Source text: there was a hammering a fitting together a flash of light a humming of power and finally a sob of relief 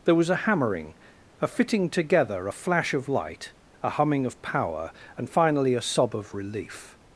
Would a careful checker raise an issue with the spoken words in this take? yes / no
no